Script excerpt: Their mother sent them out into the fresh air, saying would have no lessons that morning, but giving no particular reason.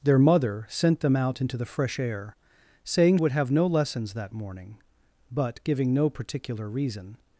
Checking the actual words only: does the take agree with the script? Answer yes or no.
yes